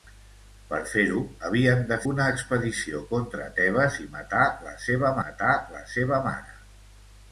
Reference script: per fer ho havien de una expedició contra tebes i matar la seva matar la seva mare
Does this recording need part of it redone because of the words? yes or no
no